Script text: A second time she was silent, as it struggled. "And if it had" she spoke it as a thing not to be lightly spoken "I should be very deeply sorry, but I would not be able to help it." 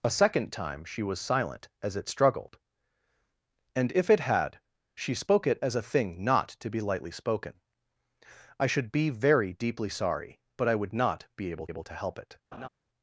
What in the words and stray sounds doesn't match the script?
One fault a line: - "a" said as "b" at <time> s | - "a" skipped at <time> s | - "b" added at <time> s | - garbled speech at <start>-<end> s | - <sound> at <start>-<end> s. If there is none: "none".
- "able" added at 11.7 s
- laugh at 12.5-12.7 s